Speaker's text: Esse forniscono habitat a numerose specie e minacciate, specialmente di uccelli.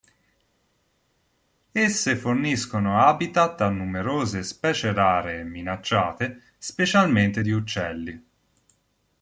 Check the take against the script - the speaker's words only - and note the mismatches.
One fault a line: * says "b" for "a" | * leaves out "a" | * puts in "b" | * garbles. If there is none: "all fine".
* puts in "rare"